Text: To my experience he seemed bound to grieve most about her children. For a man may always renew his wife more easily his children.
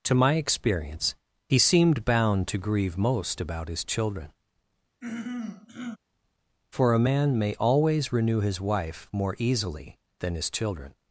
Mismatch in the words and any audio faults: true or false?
true